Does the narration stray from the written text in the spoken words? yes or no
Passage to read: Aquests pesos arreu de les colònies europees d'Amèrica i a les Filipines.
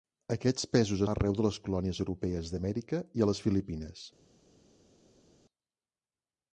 no